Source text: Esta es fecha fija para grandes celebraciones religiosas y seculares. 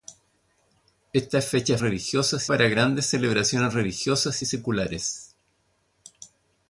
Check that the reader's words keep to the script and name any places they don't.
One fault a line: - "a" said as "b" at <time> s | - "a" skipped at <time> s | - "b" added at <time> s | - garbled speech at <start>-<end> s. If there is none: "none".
- "fija" said as "religiosas" at 1.8 s